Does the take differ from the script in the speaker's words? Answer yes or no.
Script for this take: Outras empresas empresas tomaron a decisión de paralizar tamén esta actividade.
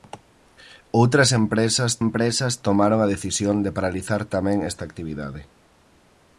no